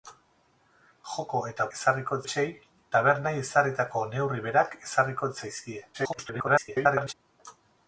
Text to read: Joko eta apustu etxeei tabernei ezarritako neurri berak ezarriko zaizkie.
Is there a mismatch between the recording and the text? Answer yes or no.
yes